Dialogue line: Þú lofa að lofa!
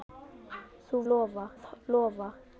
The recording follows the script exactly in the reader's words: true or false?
true